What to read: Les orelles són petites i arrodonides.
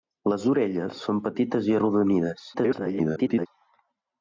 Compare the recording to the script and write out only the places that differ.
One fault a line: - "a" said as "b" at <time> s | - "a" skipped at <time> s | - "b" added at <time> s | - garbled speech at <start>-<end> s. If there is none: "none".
- garbled speech at 2.5-3.5 s